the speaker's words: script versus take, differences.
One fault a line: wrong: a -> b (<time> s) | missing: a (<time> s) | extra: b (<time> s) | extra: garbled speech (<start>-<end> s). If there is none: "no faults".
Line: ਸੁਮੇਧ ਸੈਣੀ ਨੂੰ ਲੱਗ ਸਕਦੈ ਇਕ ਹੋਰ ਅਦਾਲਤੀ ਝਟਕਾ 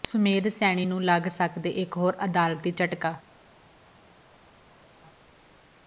no faults